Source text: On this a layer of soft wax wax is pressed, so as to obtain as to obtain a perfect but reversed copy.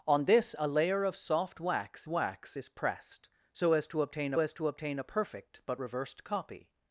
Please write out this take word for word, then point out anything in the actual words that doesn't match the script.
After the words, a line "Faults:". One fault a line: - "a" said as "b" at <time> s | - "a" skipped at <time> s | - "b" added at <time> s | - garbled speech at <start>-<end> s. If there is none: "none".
On this a layer of soft wax wax is pressed, so as to obtain as to obtain a perfect but reversed copy.
Faults:
none